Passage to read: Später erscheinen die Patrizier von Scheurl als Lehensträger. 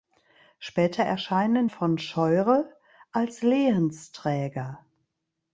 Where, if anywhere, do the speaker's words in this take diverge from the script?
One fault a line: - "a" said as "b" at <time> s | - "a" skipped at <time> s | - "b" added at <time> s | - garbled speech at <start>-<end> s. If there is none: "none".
- "die Patrizier" skipped at 1.7 s